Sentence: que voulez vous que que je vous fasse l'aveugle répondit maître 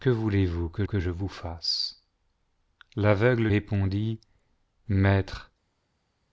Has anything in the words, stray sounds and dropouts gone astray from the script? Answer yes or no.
no